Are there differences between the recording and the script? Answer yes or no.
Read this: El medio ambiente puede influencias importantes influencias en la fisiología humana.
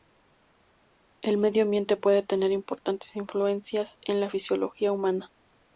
yes